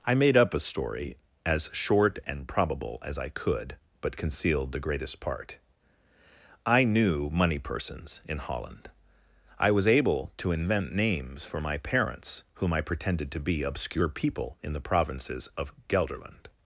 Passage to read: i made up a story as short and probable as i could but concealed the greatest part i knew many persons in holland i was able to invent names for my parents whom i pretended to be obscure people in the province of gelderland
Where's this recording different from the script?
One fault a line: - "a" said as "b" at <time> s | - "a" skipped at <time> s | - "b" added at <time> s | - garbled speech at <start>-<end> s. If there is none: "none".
- "many" said as "money" at 7.3 s
- "province" said as "provinces" at 14.8 s